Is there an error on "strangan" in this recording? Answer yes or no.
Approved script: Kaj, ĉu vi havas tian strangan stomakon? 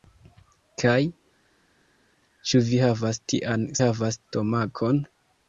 yes